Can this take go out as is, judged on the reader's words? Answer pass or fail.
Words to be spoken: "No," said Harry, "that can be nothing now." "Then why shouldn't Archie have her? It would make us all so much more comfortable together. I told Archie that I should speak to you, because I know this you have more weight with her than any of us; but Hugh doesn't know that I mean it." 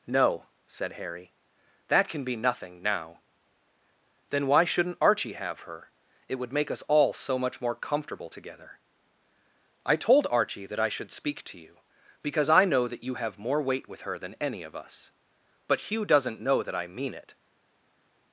fail